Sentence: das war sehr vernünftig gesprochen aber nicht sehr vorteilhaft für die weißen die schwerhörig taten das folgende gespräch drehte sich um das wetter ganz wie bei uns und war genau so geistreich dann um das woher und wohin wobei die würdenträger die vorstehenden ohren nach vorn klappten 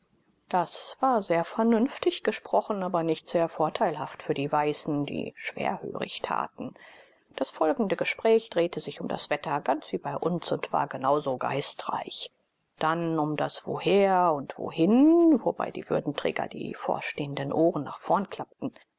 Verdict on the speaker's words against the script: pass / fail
pass